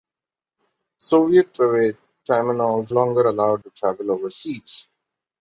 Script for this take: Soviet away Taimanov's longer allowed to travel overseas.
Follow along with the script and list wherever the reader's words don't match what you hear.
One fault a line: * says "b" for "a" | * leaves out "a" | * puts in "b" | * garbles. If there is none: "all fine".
all fine